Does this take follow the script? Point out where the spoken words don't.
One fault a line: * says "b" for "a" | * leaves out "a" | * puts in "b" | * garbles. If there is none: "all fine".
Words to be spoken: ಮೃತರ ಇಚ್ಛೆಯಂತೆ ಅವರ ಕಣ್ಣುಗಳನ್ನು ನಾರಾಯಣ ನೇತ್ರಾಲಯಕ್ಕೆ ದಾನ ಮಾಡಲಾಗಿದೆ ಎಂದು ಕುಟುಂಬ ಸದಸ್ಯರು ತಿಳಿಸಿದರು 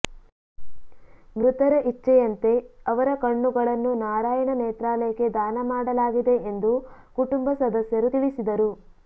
all fine